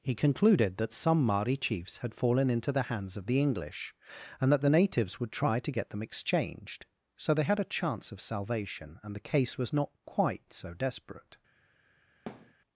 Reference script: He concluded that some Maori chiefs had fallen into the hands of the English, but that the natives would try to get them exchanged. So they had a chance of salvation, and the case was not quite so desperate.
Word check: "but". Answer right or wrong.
wrong